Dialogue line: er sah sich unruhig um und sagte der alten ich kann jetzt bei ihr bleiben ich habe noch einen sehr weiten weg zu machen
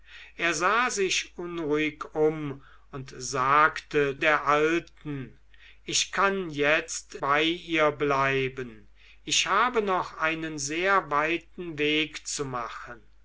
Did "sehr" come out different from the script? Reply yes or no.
no